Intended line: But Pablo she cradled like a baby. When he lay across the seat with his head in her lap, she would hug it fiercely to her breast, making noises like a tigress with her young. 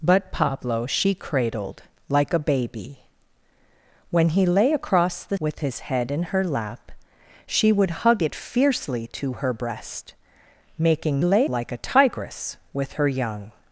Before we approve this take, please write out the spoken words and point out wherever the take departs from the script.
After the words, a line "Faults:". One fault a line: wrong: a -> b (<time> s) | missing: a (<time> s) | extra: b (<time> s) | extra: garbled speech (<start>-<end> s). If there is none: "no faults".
But Pablo she cradled like a baby. When he lay across the with his head in her lap, she would hug it fiercely to her breast, making lay like a tigress with her young.
Faults:
missing: seat (5.4 s)
wrong: noises -> lay (11.2 s)